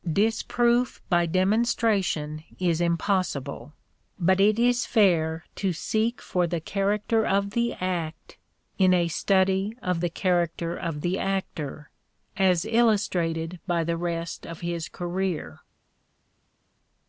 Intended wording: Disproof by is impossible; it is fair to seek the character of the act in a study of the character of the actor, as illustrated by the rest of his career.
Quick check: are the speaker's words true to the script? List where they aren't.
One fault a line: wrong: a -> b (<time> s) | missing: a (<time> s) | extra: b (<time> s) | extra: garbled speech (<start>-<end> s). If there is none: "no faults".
extra: demonstration (1.3 s)
extra: but (4.2 s)
extra: for (6.2 s)